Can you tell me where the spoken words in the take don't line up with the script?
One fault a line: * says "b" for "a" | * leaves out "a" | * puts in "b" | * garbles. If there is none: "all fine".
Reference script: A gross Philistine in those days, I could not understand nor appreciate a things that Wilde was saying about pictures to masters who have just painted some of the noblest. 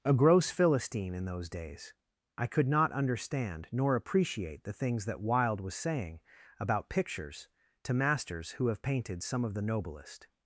* says "the" for "a"
* leaves out "just"